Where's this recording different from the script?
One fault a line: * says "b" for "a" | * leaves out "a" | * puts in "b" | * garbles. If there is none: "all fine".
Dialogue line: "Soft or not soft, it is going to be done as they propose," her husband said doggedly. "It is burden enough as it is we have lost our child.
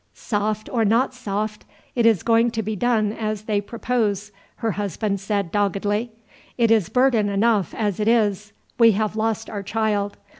all fine